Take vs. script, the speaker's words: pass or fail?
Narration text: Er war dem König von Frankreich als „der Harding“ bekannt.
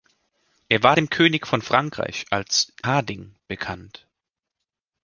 fail